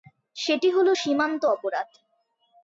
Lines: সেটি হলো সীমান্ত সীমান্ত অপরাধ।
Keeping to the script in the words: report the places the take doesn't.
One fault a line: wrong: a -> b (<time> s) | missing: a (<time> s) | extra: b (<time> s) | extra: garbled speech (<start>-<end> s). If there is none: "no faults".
missing: সীমান্ত (1.4 s)